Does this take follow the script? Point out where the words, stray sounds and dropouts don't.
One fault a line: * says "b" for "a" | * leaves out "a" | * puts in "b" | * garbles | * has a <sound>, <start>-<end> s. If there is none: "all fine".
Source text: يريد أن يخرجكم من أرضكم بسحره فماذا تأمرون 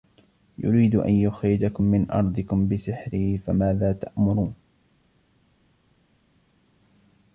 all fine